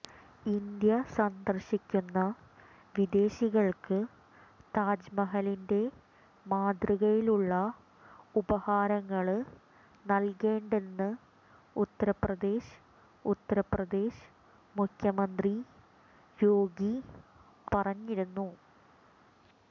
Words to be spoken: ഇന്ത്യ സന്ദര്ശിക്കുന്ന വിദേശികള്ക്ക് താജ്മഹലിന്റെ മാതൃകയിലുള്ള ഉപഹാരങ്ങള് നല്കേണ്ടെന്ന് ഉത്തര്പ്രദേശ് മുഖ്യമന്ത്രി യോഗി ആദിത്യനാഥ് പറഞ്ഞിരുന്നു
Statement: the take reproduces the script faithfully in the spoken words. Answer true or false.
false